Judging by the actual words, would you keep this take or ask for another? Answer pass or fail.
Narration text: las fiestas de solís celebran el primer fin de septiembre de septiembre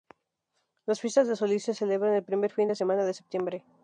fail